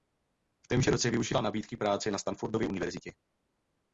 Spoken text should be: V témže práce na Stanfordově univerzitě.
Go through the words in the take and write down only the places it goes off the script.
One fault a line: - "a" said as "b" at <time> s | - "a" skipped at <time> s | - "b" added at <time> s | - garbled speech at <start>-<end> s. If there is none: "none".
- "roce využila nabídky" added at 0.9 s